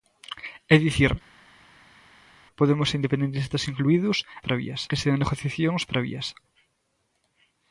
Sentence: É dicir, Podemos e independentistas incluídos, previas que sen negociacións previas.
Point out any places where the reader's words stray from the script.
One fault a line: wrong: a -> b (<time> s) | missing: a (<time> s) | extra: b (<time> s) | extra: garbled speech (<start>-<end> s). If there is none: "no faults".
no faults